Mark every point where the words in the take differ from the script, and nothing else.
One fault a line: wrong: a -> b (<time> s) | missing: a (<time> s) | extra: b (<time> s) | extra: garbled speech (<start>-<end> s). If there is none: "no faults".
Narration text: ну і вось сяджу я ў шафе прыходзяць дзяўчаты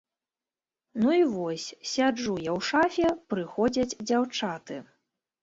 no faults